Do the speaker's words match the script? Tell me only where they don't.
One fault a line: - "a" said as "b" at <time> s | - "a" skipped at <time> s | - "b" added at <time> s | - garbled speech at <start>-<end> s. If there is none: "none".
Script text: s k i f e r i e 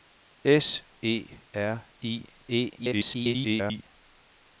- "k i f" skipped at 0.8 s
- garbled speech at 2.8-3.8 s